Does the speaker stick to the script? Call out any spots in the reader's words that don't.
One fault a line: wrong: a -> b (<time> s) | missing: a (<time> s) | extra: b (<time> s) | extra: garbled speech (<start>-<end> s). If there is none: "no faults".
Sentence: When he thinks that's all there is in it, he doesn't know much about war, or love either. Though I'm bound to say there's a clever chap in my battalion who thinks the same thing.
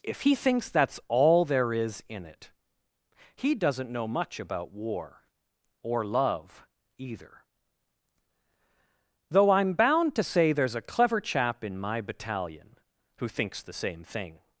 wrong: When -> If (0.0 s)